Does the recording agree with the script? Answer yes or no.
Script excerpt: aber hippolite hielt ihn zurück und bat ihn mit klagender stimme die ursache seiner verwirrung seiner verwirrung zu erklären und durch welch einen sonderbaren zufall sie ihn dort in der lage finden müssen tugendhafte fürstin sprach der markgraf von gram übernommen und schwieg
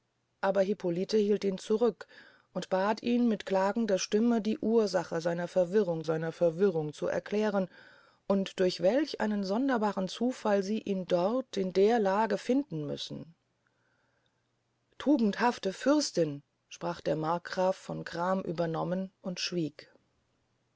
yes